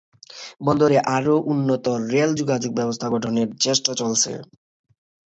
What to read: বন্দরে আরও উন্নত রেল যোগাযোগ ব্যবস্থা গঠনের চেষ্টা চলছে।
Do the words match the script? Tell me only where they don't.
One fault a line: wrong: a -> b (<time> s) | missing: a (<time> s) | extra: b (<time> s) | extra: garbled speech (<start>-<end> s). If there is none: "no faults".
no faults